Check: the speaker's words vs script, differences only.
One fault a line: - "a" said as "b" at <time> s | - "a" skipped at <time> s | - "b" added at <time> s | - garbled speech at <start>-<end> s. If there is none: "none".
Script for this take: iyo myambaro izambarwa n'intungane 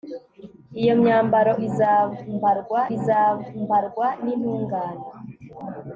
- "izambarwa" added at 3.0 s